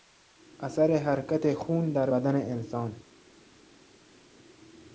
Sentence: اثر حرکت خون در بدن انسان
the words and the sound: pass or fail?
pass